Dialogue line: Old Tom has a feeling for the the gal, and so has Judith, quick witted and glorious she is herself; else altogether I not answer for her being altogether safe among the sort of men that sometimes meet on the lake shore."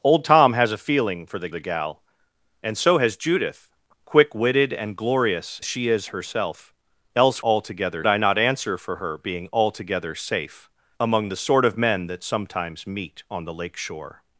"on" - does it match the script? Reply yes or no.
yes